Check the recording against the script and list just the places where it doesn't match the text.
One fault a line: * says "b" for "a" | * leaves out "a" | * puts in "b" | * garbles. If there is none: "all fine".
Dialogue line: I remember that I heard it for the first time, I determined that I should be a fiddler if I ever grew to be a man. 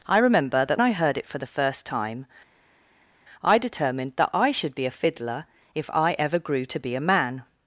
all fine